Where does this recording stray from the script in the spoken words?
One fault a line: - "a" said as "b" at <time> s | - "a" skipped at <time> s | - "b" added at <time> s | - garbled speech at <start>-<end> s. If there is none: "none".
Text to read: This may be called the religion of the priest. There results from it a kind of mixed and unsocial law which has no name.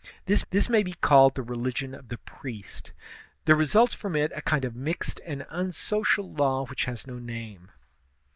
- "this" added at 0.5 s